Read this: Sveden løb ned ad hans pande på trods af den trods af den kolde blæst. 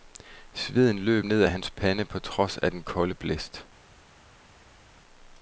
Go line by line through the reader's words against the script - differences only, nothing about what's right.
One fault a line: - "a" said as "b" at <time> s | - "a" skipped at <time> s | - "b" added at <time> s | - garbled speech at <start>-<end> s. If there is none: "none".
- "trods af den" skipped at 2.8 s